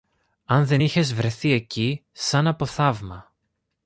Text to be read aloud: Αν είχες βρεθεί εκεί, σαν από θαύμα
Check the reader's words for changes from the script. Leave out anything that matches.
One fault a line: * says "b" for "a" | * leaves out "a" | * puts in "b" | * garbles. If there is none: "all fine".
* puts in "δεν"